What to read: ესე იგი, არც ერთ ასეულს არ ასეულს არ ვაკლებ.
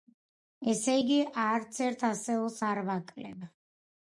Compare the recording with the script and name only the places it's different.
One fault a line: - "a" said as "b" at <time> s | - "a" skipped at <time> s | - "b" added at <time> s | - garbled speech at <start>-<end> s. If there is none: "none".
- "ასეულს არ" skipped at 2.8 s